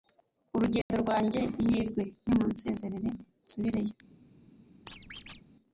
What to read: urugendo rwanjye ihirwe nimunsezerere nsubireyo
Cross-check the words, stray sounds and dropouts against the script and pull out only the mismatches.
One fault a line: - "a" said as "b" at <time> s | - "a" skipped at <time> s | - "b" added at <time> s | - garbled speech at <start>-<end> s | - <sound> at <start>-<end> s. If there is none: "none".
- dropout at 0.8-0.9 s
- squeak at 4.9-5.4 s